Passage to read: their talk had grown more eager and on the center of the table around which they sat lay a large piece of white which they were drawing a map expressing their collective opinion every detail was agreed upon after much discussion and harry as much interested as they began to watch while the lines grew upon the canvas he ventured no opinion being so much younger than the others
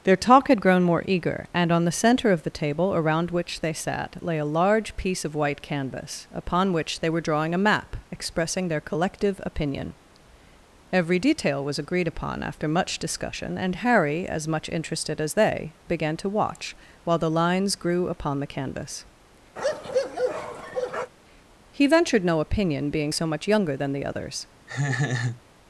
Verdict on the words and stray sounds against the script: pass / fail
fail